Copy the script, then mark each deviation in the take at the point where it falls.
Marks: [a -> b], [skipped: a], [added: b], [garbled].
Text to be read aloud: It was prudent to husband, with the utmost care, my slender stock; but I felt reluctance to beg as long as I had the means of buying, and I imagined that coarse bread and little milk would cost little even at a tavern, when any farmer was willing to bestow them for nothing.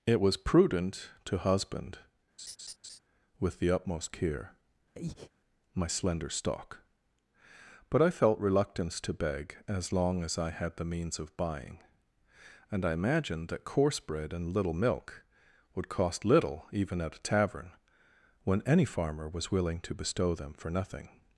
It was prudent to husband, with the utmost care, my slender stock; but I felt reluctance to beg as long as I had the means of buying, and I imagined that coarse bread and little milk would cost little even at a tavern, when any farmer was willing to bestow them for nothing.